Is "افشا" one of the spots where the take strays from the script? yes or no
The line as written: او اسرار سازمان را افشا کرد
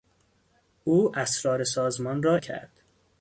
yes